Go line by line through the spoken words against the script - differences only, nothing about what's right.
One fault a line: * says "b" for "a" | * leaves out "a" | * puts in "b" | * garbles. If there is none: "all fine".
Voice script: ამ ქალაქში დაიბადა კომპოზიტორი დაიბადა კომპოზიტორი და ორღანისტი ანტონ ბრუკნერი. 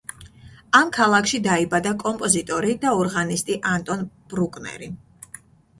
* leaves out "დაიბადა კომპოზიტორი"